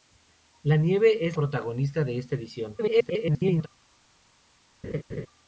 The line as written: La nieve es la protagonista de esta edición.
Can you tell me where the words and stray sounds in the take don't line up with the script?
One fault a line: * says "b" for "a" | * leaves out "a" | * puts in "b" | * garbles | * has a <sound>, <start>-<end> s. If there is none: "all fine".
* leaves out "la"
* garbles
* has a laugh, 4.8-5.3 s